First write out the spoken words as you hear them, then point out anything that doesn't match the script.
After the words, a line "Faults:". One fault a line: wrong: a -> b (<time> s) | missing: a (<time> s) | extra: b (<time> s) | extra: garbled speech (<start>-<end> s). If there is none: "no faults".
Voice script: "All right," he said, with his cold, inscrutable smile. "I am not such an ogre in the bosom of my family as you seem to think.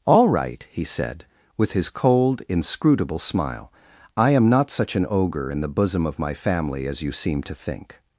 "All right," he said, with his cold, inscrutable smile. "I am not such an ogre in the bosom of my family as you seem to think.
Faults:
no faults